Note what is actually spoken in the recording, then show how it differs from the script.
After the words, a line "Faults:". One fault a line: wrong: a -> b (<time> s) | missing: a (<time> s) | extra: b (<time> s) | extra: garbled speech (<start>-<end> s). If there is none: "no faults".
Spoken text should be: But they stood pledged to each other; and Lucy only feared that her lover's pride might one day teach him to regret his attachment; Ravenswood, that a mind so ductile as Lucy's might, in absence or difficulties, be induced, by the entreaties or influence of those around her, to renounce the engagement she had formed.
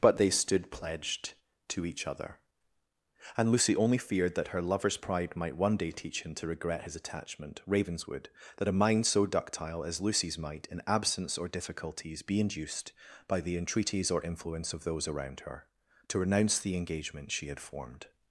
But they stood pledged to each other; and Lucy only feared that her lover's pride might one day teach him to regret his attachment; Ravenswood, that a mind so ductile as Lucy's might, in absence or difficulties, be induced, by the entreaties or influence of those around her, to renounce the engagement she had formed.
Faults:
no faults